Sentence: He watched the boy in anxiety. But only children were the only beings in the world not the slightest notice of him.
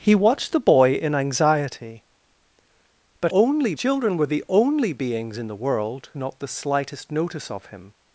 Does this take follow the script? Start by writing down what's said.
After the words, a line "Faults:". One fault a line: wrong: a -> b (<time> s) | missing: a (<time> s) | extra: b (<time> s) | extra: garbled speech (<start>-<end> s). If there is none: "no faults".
He watched the boy in anxiety. But only children were the only beings in the world not the slightest notice of him.
Faults:
no faults